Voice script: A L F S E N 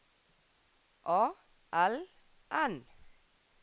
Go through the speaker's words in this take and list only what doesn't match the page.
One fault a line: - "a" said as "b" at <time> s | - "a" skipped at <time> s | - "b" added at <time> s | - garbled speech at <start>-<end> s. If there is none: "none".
- "F S E" skipped at 2.1 s